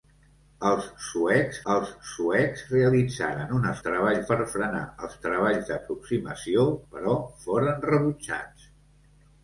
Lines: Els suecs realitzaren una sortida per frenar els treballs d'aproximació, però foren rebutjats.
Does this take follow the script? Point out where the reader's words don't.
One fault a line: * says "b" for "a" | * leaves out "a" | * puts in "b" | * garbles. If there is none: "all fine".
* puts in "els suecs"
* says "treballs" for "sortida"